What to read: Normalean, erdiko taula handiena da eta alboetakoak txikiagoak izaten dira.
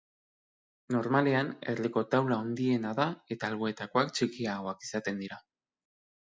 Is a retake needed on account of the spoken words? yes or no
no